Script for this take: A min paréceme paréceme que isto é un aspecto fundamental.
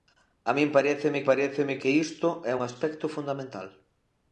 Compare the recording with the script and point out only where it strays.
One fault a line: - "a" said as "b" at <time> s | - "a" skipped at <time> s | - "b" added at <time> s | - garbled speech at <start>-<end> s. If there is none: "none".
none